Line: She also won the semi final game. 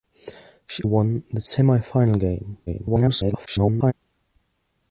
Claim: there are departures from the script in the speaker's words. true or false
true